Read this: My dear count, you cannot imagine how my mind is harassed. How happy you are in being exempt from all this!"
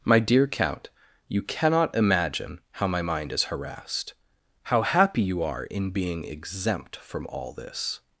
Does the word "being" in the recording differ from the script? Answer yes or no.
no